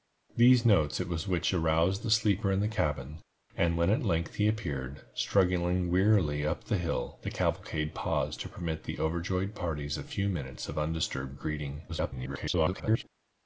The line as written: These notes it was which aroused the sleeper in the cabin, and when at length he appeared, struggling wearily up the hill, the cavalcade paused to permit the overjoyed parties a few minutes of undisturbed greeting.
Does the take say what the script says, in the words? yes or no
no